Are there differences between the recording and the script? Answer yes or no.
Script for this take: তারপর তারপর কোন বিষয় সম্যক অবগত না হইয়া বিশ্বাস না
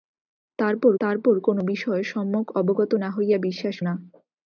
no